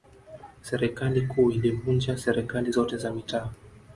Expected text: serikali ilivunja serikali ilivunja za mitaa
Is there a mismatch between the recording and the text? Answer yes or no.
yes